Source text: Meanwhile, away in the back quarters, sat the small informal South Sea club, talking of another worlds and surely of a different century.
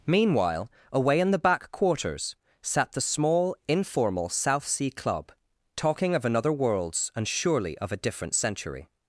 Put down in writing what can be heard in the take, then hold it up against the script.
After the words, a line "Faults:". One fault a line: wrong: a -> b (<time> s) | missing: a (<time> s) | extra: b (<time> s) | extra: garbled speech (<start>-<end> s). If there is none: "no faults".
Meanwhile, away in the back quarters, sat the small informal South Sea club, talking of another worlds and surely of a different century.
Faults:
no faults